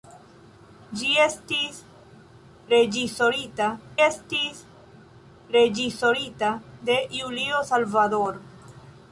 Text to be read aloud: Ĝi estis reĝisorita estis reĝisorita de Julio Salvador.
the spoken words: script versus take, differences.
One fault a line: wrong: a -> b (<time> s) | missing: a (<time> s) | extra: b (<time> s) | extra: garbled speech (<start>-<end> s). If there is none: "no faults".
no faults